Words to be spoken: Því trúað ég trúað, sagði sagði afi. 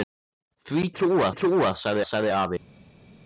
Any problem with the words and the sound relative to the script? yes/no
no